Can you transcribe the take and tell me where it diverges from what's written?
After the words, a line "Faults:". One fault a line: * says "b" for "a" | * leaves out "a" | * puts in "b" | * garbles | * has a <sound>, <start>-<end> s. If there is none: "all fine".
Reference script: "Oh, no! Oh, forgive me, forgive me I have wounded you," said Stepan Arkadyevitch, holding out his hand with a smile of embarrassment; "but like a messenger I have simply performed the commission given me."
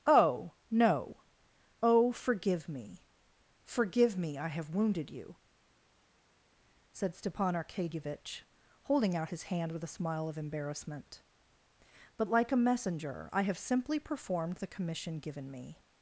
"Oh, no! Oh, forgive me, forgive me I have wounded you," said Stepan Arkadyevitch, holding out his hand with a smile of embarrassment; "but like a messenger I have simply performed the commission given me."
Faults:
all fine